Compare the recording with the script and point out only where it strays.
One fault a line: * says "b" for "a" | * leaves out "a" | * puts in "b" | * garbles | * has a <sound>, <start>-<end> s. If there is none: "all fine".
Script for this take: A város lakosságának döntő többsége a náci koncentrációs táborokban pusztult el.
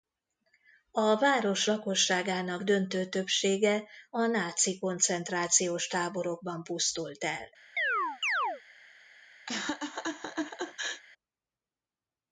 * has a chirp, 7.8-8.6 s
* has a laugh, 9.5-11.0 s